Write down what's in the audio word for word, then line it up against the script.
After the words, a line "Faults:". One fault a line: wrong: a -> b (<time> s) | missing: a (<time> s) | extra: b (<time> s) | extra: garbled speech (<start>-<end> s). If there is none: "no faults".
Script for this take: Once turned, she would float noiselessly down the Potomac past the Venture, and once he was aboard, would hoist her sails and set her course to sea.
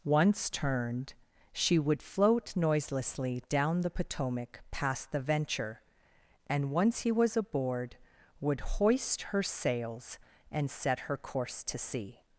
Once turned, she would float noiselessly down the Potomac past the Venture, and once he was aboard, would hoist her sails and set her course to sea.
Faults:
no faults